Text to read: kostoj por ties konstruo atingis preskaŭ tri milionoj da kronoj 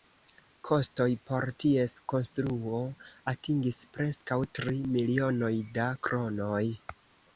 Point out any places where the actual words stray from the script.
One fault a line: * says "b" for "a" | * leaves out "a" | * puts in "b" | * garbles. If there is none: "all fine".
all fine